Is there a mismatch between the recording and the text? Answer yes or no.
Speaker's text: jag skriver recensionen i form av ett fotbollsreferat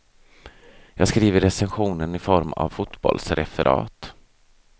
yes